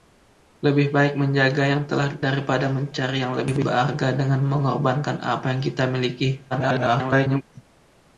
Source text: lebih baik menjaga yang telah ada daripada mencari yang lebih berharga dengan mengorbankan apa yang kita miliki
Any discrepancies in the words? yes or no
yes